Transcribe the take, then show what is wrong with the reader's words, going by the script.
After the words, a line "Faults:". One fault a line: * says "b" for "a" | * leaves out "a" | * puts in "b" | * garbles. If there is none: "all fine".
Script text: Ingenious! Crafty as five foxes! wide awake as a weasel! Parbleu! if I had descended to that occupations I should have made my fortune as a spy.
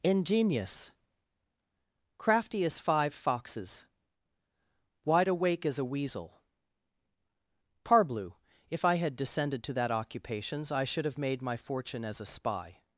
Ingenious! Crafty as five foxes! wide awake as a weasel! Parbleu! if I had descended to that occupations I should have made my fortune as a spy.
Faults:
all fine